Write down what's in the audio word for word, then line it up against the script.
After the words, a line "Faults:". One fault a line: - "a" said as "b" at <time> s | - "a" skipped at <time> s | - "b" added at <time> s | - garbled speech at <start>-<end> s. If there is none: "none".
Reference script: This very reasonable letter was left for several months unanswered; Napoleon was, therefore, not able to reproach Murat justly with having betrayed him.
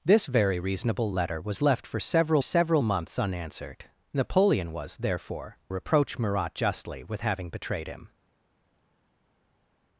This very reasonable letter was left for several several months unanswered; Napoleon was, therefore, reproach Murat justly with having betrayed him.
Faults:
- "several" added at 2.4 s
- "not able to" skipped at 5.6 s